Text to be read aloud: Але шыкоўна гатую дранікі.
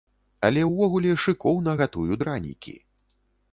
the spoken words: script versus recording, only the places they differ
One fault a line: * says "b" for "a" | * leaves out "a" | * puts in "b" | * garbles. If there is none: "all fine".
* puts in "ўвогуле"